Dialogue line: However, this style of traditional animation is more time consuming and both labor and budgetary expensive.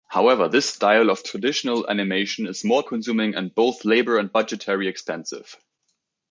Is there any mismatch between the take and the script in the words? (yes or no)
yes